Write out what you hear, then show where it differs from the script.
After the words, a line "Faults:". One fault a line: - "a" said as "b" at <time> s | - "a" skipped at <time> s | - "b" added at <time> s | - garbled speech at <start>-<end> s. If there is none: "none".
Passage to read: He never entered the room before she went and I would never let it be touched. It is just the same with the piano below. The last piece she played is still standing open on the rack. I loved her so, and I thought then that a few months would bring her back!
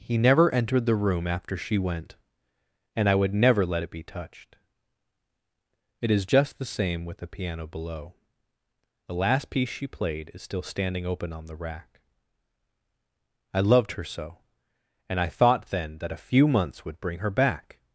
He never entered the room after she went and I would never let it be touched. It is just the same with the piano below. The last piece she played is still standing open on the rack. I loved her so, and I thought then that a few months would bring her back!
Faults:
- "before" said as "after" at 1.3 s